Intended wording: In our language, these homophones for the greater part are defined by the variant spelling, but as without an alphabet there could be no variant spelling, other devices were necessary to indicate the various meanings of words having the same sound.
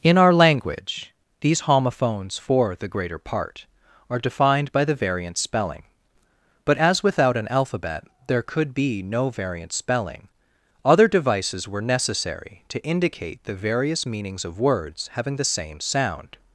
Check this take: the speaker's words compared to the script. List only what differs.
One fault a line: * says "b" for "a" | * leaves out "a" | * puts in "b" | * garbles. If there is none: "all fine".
all fine